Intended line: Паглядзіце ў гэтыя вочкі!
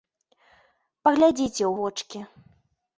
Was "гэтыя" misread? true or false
true